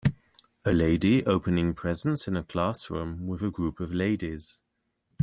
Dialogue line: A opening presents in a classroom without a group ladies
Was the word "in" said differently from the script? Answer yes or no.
no